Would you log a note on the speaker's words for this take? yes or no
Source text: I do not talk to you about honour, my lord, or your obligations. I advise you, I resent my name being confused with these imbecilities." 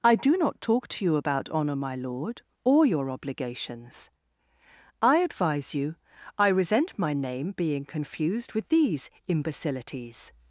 no